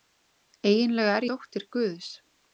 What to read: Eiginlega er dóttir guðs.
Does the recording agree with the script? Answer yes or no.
yes